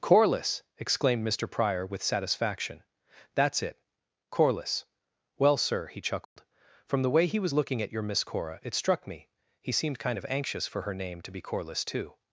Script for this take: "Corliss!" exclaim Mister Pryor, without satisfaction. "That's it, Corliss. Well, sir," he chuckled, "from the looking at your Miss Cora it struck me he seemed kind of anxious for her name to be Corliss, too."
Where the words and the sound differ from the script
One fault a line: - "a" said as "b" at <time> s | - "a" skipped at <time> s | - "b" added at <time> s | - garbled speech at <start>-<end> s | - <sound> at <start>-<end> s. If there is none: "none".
- "exclaim" said as "exclaimed" at 0.8 s
- "without" said as "with" at 1.9 s
- dropout at 6.2-6.4 s
- "way he was" added at 7.1 s